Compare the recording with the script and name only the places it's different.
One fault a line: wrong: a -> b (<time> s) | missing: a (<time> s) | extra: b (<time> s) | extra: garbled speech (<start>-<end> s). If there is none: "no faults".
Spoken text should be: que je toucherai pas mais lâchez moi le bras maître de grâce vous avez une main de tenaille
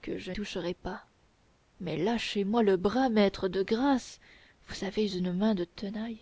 no faults